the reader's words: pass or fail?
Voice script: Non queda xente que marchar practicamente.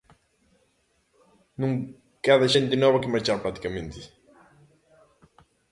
fail